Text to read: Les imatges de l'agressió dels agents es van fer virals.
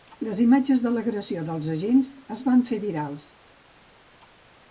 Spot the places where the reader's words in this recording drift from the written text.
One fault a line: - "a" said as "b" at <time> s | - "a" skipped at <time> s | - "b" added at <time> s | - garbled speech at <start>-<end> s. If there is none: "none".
none